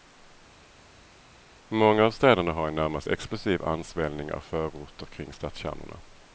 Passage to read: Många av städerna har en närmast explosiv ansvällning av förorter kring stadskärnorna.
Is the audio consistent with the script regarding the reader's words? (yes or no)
yes